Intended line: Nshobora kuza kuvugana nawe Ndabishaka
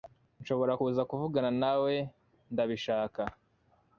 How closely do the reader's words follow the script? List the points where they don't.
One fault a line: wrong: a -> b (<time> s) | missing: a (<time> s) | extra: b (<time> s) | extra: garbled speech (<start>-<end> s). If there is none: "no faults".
no faults